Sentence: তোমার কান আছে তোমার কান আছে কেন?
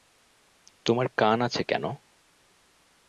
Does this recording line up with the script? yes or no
no